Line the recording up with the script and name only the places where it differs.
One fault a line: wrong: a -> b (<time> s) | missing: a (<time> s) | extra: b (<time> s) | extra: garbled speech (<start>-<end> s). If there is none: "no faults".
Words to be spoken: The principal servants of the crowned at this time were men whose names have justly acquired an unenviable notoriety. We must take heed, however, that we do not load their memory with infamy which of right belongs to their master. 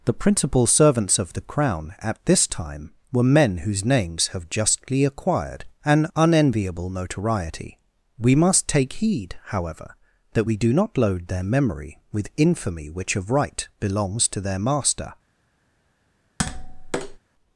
wrong: crowned -> crown (1.4 s)